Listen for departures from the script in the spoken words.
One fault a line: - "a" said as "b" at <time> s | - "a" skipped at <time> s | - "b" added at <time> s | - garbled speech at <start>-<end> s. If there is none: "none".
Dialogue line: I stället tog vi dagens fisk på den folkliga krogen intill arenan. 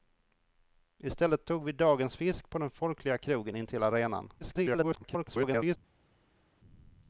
- garbled speech at 4.4-5.8 s